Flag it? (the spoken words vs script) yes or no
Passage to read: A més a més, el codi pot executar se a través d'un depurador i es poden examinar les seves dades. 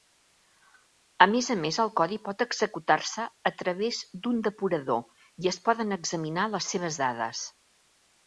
no